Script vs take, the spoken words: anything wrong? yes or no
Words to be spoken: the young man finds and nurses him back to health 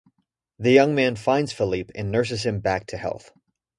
yes